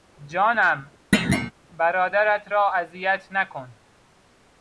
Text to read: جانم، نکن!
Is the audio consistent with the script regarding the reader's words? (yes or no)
no